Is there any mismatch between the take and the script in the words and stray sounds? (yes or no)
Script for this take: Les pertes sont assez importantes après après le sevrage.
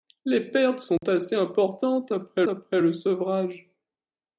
yes